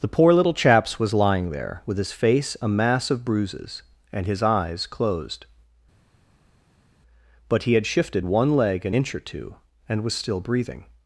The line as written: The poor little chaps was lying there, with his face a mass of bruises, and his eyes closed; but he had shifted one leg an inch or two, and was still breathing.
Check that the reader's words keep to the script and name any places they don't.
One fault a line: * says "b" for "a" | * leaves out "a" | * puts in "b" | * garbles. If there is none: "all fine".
all fine